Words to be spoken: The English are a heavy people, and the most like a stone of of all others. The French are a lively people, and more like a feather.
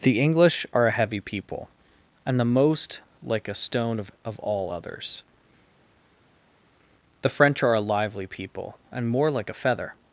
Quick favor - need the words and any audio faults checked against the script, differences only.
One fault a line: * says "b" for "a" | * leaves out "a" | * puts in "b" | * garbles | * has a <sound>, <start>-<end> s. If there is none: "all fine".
all fine